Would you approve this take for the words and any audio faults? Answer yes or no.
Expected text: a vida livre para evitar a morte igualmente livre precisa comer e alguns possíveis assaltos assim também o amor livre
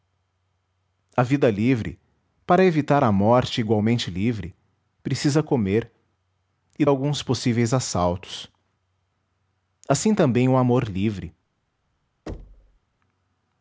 no